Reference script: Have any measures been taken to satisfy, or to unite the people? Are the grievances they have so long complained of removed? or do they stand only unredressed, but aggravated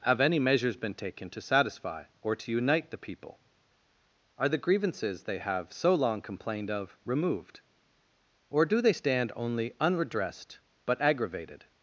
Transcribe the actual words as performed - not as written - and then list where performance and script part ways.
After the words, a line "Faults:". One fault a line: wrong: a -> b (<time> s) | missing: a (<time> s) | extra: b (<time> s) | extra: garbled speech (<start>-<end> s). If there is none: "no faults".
Have any measures been taken to satisfy, or to unite the people? Are the grievances they have so long complained of removed? or do they stand only unredressed, but aggravated
Faults:
no faults